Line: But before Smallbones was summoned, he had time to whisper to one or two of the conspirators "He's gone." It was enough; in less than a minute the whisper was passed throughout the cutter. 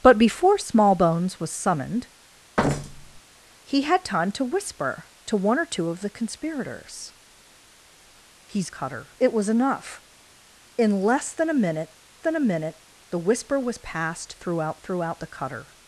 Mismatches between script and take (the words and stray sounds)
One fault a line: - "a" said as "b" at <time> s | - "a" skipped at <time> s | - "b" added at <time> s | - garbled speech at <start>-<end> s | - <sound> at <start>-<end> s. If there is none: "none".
- thud at 2.6-3.2 s
- "gone" said as "cutter" at 8.7 s
- "than a minute" added at 12.2 s
- "throughout" added at 14.8 s